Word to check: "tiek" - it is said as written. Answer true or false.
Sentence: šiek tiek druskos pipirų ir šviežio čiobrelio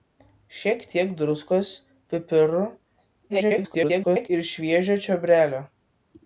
true